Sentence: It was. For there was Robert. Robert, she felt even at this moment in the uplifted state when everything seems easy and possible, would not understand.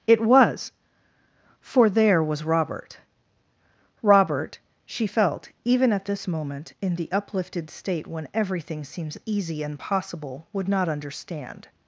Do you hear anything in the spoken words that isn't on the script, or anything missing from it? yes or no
no